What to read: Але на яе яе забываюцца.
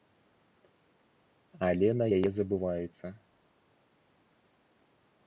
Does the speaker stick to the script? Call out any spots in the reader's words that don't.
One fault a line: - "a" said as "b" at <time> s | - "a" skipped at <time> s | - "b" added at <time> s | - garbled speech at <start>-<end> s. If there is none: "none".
- "яе" skipped at 2.3 s